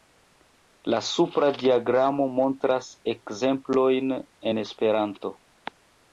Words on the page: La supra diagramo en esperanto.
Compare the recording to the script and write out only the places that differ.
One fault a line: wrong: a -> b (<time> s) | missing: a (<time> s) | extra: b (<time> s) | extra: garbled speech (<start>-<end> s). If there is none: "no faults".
extra: montras ekzemplojn (2.4 s)